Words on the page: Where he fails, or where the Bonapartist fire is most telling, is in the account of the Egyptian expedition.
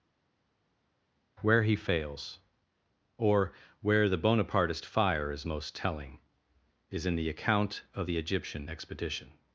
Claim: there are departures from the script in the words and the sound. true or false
false